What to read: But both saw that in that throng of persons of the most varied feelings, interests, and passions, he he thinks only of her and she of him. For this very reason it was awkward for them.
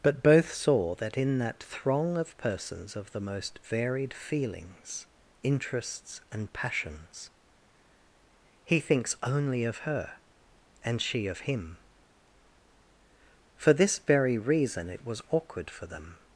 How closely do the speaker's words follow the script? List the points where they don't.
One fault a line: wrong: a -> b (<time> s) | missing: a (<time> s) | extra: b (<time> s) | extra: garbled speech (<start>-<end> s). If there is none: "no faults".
missing: he (8.8 s)